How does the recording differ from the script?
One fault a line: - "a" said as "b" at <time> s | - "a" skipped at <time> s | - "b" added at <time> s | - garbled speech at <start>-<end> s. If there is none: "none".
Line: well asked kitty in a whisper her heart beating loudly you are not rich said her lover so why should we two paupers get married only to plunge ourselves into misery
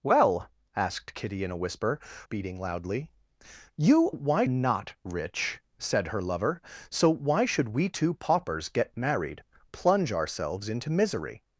- "her heart" skipped at 2.0 s
- "are" said as "why" at 4.1 s
- "only to" skipped at 9.4 s